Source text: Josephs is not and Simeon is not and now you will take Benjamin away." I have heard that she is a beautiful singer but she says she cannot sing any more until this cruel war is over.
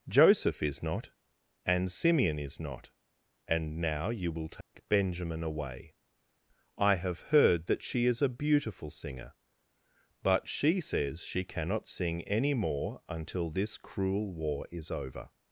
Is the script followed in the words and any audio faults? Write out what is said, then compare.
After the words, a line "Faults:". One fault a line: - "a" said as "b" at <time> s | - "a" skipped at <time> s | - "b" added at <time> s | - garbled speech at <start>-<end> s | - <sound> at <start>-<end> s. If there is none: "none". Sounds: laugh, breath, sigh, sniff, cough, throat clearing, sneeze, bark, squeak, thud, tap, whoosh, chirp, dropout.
Joseph is not and Simeon is not and now you will take Benjamin away." I have heard that she is a beautiful singer but she says she cannot sing any more until this cruel war is over.
Faults:
- "Josephs" said as "Joseph" at 0.1 s
- dropout at 4.6-4.7 s